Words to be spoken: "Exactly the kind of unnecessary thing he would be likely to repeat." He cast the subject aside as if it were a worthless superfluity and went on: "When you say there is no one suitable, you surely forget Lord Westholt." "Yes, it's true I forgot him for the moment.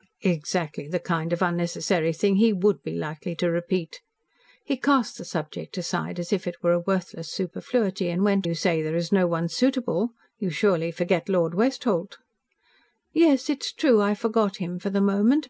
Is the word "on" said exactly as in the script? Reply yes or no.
no